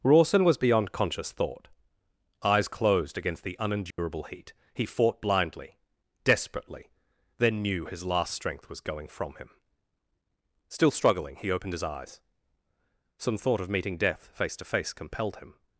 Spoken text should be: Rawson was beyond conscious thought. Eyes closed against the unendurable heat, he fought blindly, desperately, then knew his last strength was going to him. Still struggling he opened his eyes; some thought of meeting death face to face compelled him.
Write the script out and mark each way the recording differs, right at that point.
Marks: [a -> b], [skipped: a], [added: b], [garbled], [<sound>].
Rawson was beyond conscious thought. Eyes closed against the unendurable [dropout] heat, he fought blindly, desperately, then knew his last strength was going [to -> from] him. Still struggling he opened his eyes; some thought of meeting death face to face compelled him.